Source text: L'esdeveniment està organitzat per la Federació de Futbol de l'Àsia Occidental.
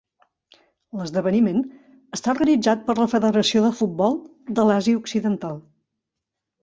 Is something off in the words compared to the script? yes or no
no